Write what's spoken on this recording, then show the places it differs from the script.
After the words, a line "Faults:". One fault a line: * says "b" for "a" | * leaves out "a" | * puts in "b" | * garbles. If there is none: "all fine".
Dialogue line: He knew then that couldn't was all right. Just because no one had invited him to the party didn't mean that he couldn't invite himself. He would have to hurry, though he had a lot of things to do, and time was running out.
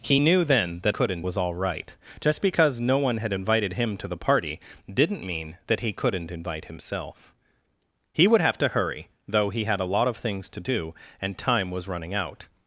He knew then that couldn't was all right. Just because no one had invited him to the party didn't mean that he couldn't invite himself. He would have to hurry, though he had a lot of things to do, and time was running out.
Faults:
all fine